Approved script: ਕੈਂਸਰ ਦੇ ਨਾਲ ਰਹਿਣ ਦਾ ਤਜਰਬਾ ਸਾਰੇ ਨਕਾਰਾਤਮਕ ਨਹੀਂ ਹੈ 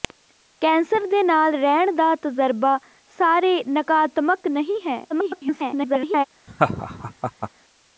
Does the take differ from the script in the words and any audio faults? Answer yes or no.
yes